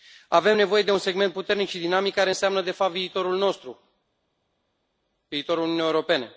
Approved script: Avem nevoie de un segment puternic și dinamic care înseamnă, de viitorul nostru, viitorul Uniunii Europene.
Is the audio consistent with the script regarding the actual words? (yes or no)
no